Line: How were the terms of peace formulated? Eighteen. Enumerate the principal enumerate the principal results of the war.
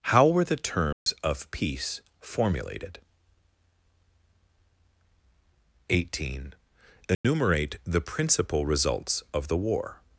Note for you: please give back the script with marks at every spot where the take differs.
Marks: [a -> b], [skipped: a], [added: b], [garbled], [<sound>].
How were the terms [dropout] of peace formulated? Eighteen. Enumerate [dropout] the principal [skipped: enumerate the principal] results of the war.